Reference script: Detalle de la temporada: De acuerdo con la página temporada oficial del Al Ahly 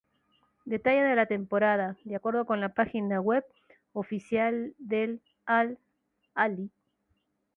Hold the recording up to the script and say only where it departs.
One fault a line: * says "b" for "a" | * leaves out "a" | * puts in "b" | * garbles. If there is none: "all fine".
* says "web" for "temporada"